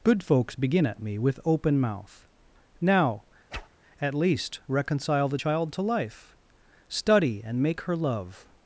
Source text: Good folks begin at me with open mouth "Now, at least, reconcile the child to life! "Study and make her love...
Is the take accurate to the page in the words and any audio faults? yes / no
no